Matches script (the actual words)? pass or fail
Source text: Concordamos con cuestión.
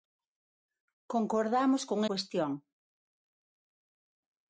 pass